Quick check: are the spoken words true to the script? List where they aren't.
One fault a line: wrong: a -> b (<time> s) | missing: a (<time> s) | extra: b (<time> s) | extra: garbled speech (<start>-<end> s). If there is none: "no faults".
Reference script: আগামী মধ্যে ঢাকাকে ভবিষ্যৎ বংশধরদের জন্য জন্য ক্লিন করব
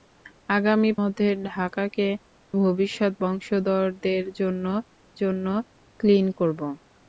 no faults